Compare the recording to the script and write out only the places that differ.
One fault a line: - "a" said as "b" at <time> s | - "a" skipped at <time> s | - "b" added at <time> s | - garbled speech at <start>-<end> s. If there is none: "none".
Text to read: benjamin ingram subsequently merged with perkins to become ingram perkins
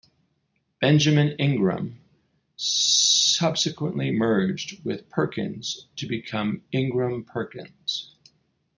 none